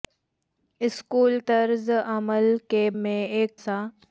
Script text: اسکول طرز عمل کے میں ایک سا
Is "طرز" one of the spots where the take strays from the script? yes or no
no